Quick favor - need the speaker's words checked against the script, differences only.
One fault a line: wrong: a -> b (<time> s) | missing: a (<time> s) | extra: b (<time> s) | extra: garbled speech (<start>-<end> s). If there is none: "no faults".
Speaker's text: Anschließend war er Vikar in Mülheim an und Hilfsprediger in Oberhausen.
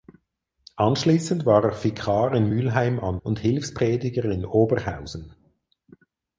no faults